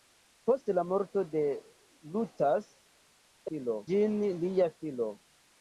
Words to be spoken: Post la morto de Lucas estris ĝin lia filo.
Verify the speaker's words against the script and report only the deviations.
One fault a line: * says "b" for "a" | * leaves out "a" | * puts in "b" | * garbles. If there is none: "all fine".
* says "filo" for "estris"